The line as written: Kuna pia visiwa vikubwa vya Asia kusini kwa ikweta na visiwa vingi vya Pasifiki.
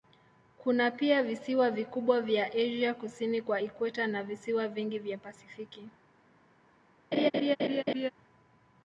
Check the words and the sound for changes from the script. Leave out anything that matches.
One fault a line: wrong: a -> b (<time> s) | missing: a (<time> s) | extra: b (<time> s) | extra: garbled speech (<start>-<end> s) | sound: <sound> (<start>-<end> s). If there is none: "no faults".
sound: laugh (7.1-8.1 s)